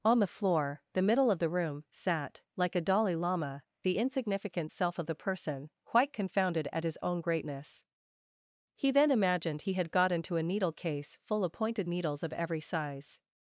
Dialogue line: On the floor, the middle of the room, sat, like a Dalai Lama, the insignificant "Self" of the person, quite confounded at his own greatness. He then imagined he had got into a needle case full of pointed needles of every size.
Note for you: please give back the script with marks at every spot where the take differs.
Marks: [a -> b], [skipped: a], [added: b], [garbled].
On the floor, the middle of the room, sat, like a Dalai Lama, the insignificant "Self" of the person, quite confounded at his own greatness. He then imagined he had got into a needle case full of pointed needles of every size.